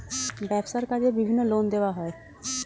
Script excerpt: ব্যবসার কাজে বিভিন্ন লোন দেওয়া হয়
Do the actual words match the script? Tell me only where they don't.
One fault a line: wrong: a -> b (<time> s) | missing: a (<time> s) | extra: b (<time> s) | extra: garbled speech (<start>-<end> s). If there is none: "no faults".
no faults